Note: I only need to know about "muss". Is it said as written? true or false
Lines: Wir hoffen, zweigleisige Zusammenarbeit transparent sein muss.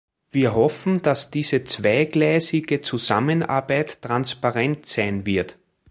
false